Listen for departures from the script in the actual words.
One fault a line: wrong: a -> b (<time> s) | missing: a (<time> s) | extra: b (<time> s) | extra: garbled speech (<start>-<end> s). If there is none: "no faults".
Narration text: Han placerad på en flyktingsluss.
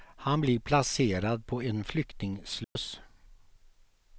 extra: blir (0.4 s)